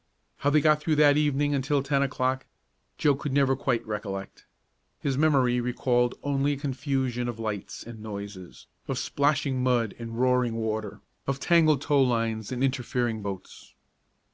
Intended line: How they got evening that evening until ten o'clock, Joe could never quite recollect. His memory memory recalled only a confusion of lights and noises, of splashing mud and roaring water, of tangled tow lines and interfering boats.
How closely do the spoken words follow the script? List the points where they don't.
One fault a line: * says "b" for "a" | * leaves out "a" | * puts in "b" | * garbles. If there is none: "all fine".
* says "through" for "evening"
* leaves out "memory"